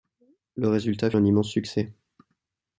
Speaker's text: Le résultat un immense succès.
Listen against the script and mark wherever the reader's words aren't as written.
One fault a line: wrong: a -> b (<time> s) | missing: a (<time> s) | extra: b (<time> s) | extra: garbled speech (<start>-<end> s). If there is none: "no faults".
no faults